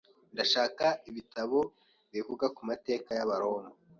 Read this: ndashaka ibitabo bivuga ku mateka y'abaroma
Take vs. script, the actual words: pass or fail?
pass